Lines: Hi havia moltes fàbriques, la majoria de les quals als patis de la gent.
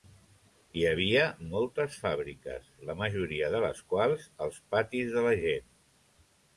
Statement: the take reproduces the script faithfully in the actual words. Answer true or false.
true